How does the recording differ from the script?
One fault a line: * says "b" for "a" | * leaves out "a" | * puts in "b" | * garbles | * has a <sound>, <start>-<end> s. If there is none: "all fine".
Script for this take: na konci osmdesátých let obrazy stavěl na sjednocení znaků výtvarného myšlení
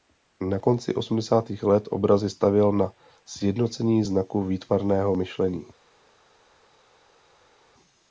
all fine